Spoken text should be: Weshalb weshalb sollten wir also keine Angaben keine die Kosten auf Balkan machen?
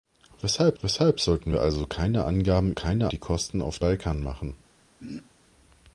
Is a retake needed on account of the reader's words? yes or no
no